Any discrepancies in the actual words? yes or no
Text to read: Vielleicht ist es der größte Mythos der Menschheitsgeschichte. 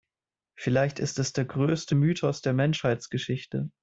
no